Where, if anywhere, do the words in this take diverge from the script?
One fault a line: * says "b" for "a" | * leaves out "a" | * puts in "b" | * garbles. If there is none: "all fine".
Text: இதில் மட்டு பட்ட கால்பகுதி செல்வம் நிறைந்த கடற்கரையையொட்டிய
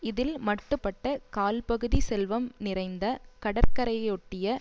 all fine